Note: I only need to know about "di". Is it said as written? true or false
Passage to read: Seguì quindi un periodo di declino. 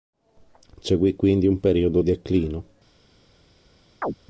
false